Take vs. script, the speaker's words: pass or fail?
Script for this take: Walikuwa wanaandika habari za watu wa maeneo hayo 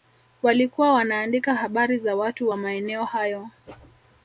pass